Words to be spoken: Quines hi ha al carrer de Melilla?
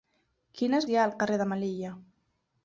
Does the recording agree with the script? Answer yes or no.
yes